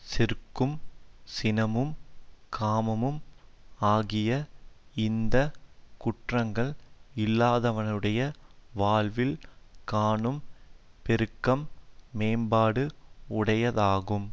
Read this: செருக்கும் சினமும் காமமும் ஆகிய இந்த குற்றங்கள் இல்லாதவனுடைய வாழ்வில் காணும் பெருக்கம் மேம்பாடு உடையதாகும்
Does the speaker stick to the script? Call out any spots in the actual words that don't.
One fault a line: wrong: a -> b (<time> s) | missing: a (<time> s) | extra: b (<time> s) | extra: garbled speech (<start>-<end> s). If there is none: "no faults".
no faults